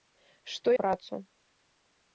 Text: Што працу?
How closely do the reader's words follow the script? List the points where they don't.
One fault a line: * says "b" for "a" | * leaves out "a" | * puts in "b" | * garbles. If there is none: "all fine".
all fine